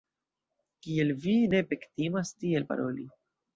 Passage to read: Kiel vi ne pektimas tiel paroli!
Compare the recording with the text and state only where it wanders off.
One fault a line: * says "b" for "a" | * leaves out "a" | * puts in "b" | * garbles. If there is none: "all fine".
all fine